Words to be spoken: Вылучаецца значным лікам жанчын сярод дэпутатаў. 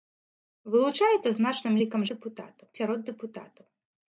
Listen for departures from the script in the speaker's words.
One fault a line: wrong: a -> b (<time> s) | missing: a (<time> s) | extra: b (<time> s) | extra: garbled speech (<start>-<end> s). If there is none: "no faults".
wrong: жанчын -> дэпутатаў (2.1 s)